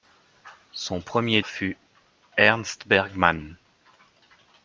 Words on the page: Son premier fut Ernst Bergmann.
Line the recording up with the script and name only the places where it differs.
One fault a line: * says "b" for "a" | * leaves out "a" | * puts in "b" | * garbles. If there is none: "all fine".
all fine